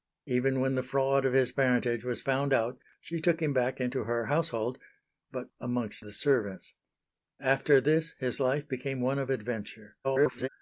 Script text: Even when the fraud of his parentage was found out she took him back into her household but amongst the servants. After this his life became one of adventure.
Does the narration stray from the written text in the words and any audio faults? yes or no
yes